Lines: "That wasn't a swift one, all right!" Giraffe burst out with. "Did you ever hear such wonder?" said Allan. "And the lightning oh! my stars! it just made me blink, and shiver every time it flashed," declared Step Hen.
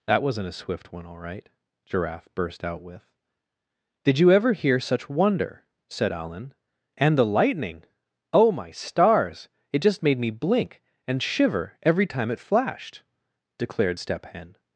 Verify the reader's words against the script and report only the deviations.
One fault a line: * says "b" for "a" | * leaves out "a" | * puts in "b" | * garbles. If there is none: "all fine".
all fine